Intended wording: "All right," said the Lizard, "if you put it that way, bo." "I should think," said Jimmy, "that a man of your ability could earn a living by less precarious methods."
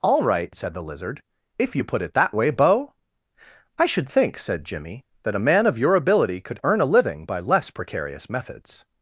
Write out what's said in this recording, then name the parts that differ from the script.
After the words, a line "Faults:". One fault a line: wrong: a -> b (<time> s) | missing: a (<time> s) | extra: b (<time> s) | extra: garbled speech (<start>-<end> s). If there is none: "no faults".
"All right," said the Lizard, "if you put it that way, bo." "I should think," said Jimmy, "that a man of your ability could earn a living by less precarious methods."
Faults:
no faults